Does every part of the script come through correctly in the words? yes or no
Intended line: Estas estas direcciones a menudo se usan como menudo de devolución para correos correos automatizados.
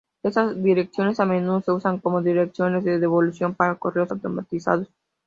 no